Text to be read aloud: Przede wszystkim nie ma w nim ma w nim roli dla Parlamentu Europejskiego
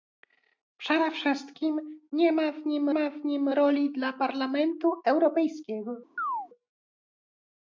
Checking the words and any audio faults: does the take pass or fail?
fail